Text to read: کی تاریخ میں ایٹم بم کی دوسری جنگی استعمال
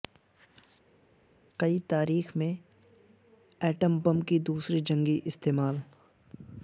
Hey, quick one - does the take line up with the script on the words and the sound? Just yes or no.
yes